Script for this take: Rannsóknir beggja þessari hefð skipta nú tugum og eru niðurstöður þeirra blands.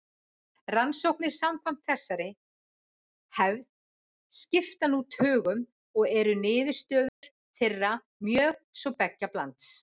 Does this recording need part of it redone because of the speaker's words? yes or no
yes